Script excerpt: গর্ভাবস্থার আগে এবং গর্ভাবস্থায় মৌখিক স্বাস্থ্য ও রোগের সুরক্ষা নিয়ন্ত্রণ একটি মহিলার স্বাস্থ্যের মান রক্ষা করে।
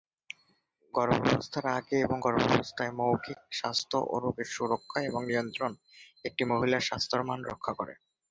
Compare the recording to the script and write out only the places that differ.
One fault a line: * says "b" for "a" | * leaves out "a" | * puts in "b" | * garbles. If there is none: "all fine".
* puts in "এবং"